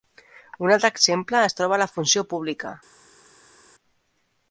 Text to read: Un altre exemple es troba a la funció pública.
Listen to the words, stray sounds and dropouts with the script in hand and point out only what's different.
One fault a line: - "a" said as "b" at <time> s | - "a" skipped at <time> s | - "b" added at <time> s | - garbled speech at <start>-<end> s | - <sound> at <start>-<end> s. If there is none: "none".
none